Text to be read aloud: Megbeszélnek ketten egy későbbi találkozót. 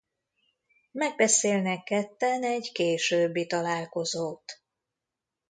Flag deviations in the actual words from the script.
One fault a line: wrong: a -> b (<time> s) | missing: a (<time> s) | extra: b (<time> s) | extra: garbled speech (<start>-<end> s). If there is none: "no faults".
no faults